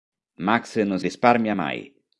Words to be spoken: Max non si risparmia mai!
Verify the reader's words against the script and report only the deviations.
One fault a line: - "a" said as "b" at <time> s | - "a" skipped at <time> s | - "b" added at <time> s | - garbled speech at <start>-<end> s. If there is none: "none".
- "si" skipped at 1.0 s